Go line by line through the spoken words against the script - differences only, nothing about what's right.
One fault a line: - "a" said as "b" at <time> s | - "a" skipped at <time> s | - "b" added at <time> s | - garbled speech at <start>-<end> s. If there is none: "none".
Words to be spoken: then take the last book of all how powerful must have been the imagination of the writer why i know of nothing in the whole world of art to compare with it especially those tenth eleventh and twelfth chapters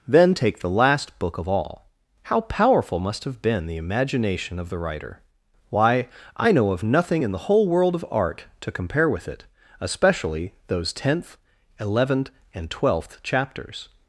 none